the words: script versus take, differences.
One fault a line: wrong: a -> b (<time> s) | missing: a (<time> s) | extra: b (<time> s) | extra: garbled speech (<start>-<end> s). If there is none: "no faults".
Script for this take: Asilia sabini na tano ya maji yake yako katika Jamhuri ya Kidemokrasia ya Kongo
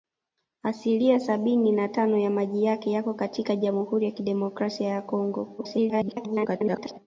extra: garbled speech (5.6-7.0 s)